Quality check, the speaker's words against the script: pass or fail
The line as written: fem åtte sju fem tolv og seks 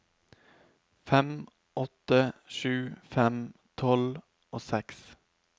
pass